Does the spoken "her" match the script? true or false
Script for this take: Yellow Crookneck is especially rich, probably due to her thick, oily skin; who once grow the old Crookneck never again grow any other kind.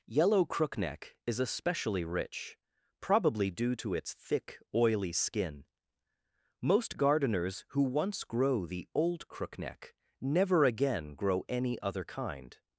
false